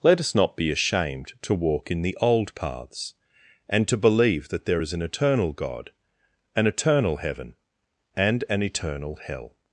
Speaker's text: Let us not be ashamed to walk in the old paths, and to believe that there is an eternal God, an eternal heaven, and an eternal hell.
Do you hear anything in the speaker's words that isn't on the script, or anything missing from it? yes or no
no